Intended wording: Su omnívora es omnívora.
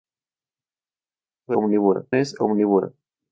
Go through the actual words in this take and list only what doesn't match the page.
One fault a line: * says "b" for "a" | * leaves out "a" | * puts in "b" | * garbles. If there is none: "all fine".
all fine